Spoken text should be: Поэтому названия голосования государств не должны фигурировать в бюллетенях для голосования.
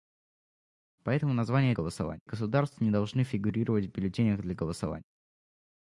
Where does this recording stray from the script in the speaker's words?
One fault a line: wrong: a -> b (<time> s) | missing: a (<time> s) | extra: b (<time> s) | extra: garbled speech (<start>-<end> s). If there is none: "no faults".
no faults